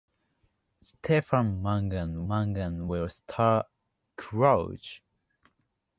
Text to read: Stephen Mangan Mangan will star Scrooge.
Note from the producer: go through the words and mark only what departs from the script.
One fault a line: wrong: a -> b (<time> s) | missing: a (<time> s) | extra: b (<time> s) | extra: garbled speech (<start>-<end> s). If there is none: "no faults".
no faults